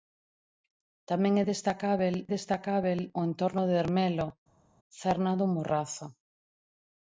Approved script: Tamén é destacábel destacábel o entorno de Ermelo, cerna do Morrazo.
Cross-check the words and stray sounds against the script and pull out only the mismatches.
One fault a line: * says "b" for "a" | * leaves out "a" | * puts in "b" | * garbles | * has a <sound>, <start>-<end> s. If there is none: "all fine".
all fine